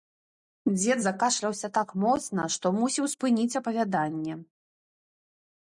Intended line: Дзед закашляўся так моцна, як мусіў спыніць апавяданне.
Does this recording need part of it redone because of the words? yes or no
yes